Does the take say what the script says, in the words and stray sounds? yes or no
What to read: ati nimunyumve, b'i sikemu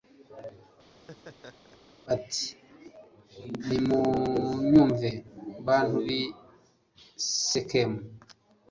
no